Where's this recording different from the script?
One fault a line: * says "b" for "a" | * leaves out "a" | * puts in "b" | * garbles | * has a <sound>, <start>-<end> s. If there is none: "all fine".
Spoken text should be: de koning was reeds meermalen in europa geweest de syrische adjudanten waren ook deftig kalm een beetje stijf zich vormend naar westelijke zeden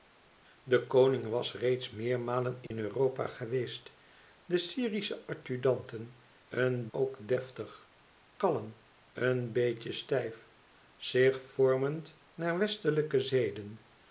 * has a dropout, 2.7-2.7 s
* says "een" for "waren"